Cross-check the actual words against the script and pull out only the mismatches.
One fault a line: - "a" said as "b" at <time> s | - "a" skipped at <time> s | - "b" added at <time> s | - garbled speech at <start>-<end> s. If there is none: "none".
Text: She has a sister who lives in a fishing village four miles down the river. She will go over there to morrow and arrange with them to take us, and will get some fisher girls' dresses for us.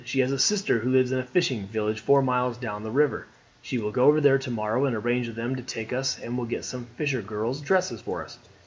none